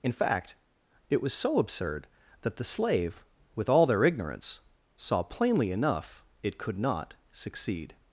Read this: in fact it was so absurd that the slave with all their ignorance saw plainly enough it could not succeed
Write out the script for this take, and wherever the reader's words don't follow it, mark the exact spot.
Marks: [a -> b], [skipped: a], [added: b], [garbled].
in fact it was so absurd that the slave with all their ignorance saw plainly enough it could not succeed